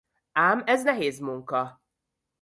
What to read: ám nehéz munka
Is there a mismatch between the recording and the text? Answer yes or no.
yes